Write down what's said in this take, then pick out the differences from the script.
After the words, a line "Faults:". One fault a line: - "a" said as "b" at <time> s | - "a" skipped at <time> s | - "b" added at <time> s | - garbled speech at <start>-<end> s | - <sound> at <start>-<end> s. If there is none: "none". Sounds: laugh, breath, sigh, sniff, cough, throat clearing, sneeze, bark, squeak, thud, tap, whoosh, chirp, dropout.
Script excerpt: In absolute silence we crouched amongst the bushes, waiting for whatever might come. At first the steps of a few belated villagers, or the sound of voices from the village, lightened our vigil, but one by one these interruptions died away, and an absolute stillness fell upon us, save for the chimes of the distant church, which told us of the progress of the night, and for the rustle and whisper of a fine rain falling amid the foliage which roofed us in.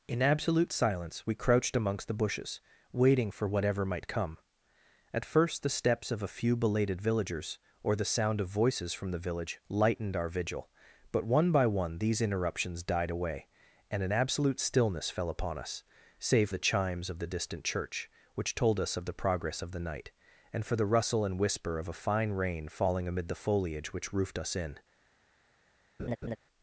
In absolute silence we crouched amongst the bushes, waiting for whatever might come. At first the steps of a few belated villagers, or the sound of voices from the village, lightened our vigil, but one by one these interruptions died away, and an absolute stillness fell upon us, save the chimes of the distant church, which told us of the progress of the night, and for the rustle and whisper of a fine rain falling amid the foliage which roofed us in.
Faults:
- "for" skipped at 16.5 s
- laugh at 26.0-26.4 s